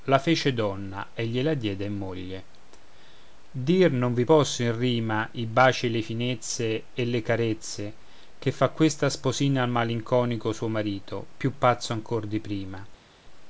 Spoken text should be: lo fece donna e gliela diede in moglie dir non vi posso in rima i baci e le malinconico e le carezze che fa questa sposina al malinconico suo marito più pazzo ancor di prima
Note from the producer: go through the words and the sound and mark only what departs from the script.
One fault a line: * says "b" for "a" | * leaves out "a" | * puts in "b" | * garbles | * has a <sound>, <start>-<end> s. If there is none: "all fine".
* says "la" for "lo"
* says "finezze" for "malinconico"